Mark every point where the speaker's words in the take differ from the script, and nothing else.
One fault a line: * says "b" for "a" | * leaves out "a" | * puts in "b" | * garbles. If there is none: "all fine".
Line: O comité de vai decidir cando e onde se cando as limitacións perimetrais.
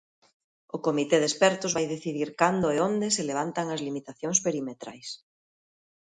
* puts in "expertos"
* says "levantan" for "cando"